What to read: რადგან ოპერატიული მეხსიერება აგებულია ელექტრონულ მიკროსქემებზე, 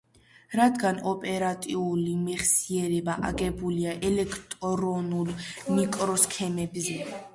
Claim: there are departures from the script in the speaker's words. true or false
false